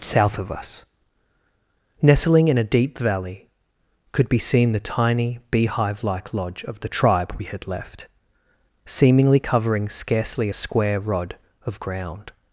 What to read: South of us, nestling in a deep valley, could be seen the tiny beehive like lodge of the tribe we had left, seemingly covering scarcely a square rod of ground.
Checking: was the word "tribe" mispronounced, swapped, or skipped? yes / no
no